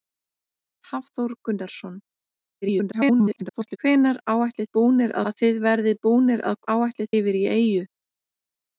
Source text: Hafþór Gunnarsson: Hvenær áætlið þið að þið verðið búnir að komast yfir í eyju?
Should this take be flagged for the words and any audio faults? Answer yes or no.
yes